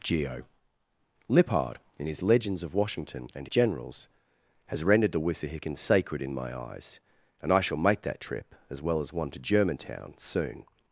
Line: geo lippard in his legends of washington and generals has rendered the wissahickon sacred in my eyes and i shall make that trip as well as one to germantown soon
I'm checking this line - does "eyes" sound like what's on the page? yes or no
yes